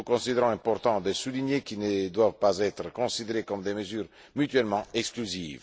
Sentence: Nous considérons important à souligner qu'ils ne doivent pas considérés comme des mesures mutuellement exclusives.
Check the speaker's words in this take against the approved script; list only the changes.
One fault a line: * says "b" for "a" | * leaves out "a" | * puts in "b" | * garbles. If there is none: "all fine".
* says "de" for "à"
* puts in "être"